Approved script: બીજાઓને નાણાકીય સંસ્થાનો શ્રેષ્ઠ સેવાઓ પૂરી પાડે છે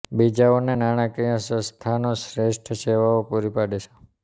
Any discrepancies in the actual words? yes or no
no